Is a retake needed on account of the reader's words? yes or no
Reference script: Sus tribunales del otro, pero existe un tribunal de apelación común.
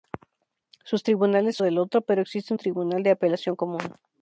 no